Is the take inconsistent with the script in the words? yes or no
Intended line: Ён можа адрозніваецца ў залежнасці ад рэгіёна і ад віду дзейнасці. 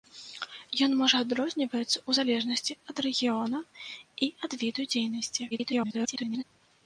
yes